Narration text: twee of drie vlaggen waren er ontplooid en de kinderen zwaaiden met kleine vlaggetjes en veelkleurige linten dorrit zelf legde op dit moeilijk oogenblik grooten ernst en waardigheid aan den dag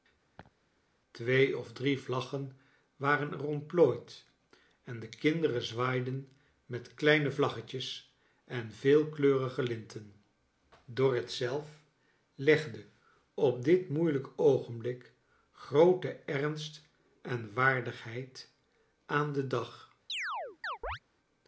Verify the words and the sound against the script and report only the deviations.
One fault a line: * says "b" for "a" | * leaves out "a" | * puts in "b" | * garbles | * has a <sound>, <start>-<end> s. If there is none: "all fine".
* has a laugh, 0.4-0.5 s
* has a chirp, 20.1-21.0 s